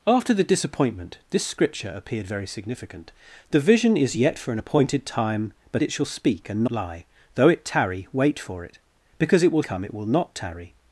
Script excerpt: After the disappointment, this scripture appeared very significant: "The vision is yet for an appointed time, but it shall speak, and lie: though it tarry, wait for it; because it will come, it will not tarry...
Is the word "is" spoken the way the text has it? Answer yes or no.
yes